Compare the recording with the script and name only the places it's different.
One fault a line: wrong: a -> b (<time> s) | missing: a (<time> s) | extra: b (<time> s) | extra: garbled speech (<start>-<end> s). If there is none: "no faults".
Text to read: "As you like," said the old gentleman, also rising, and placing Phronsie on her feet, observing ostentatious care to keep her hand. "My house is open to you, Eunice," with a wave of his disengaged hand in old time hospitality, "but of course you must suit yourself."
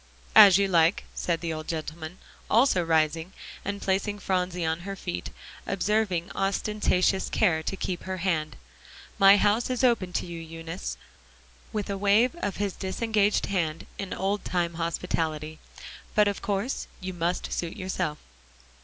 no faults